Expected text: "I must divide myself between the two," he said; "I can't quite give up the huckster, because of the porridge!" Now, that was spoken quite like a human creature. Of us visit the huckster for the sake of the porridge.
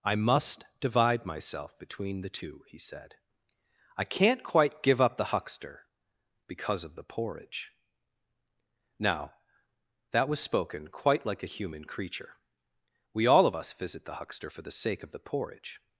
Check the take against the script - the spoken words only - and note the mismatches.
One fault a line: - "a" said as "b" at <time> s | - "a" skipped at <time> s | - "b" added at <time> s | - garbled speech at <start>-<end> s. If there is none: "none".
- "We all" added at 13.1 s